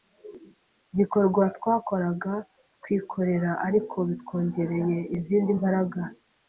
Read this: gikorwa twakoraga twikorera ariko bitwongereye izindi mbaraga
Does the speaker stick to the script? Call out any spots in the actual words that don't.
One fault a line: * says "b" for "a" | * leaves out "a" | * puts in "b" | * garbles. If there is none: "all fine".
all fine